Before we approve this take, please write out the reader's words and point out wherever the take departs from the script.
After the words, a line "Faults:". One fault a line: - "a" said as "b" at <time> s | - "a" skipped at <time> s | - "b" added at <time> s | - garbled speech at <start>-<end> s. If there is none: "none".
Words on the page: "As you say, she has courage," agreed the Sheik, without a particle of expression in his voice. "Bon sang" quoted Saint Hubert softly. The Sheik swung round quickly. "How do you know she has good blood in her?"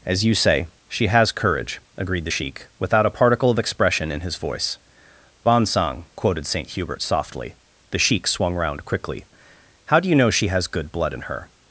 "As you say, she has courage," agreed the Sheik, without a particle of expression in his voice. "Bon sang" quoted Saint Hubert softly. The Sheik swung round quickly. "How do you know she has good blood in her?"
Faults:
none